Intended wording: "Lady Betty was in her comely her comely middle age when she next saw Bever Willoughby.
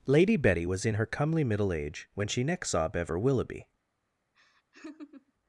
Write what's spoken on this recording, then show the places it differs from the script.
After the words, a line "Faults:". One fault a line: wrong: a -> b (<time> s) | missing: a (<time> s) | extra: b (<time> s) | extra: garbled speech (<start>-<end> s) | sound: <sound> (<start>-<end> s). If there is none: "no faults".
"Lady Betty was in her comely middle age when she next saw Bever Willoughby.
Faults:
missing: her comely (1.4 s)
sound: laugh (4.3-5.3 s)